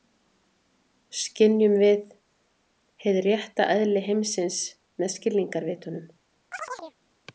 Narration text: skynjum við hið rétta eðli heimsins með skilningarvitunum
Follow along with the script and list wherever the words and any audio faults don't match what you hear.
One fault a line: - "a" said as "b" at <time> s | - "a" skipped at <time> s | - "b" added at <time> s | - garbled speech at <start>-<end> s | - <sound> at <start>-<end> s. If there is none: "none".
- chirp at 6.5-7.0 s